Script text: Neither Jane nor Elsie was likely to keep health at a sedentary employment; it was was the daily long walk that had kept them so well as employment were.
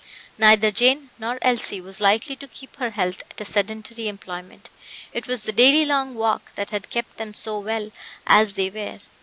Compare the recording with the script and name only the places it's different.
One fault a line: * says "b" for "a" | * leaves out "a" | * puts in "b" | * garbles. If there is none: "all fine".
* puts in "her"
* leaves out "was"
* says "they" for "employment"